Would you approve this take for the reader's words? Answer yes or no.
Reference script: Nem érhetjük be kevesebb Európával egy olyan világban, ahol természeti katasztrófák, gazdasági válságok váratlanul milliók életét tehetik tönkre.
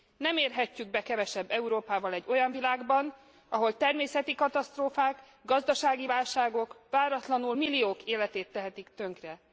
yes